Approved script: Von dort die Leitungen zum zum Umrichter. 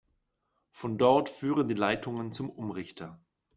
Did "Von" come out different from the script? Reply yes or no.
no